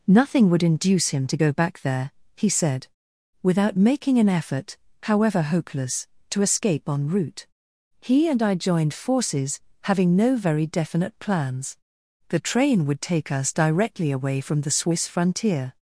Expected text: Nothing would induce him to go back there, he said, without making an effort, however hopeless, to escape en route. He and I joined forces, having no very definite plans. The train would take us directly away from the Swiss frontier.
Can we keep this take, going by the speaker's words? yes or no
yes